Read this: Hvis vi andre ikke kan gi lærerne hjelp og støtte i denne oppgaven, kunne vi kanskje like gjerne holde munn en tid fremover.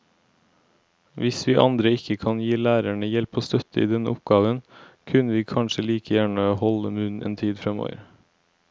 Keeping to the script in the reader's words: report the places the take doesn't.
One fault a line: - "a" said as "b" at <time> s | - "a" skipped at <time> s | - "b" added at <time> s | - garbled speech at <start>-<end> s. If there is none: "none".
none